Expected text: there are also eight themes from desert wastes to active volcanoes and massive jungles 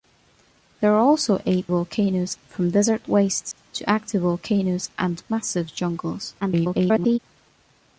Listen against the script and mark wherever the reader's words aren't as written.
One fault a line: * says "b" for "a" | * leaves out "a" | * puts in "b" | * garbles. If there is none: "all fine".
* says "volcanoes" for "themes"
* garbles